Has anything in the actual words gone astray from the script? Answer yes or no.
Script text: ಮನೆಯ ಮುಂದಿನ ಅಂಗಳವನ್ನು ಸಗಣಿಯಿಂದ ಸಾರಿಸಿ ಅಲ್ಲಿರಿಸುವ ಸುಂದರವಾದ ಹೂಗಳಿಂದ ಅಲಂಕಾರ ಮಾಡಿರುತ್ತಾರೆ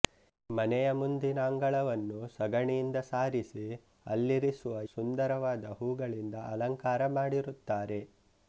no